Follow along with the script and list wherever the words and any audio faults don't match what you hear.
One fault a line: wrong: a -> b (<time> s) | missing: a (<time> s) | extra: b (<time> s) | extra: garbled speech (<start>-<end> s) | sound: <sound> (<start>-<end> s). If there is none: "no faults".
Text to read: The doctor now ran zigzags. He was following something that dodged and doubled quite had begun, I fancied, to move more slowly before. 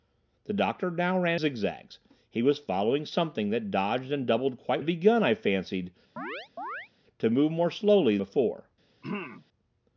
sound: chirp (6.2-6.9 s)
sound: throat clearing (9.0-9.5 s)